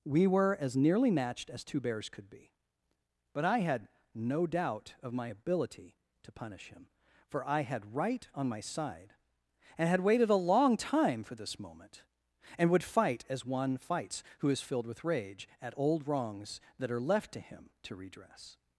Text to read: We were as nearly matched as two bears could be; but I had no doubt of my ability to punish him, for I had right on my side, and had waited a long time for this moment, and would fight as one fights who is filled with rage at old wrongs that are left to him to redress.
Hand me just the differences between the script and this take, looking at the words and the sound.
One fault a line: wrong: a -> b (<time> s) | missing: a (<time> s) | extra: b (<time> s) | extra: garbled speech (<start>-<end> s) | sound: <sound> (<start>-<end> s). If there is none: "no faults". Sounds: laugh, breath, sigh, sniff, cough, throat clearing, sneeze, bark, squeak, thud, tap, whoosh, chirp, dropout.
no faults